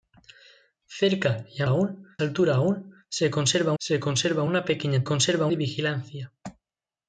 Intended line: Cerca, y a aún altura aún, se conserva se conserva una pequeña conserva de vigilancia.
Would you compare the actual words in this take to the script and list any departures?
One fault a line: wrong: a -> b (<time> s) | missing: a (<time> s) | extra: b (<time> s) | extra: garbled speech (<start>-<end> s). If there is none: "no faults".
no faults